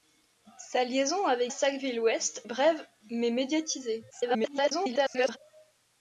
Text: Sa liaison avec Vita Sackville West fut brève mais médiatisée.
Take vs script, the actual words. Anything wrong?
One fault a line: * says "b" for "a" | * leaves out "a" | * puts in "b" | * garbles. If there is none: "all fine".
* leaves out "Vita"
* leaves out "fut"
* garbles